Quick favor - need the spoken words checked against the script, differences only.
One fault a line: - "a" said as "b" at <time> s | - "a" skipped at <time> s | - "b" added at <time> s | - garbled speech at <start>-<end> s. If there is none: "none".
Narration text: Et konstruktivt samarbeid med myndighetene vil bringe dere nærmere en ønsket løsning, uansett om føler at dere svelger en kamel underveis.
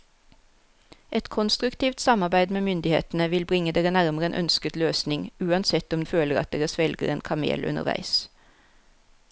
none